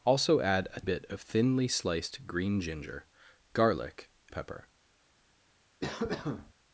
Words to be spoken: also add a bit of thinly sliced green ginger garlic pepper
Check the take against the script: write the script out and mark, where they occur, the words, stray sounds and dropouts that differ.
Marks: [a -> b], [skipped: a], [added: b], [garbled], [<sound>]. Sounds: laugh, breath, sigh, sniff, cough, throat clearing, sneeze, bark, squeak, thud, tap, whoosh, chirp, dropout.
also add a bit of thinly sliced green ginger garlic pepper [cough]